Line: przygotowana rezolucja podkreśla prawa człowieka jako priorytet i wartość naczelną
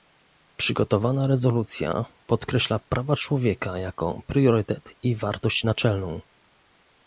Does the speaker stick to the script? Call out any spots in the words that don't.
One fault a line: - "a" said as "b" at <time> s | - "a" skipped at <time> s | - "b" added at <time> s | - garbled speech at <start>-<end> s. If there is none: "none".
none